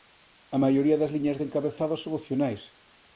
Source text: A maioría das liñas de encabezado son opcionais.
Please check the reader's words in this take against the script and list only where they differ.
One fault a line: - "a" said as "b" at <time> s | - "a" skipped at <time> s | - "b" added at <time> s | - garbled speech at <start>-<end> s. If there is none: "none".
none